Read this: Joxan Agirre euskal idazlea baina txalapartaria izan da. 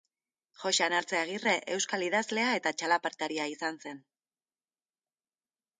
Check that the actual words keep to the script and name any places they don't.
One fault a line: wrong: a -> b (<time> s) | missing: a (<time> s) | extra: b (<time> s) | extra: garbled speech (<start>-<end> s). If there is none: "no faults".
extra: Artze (1.0 s)
wrong: baina -> eta (2.6 s)
wrong: da -> zen (3.9 s)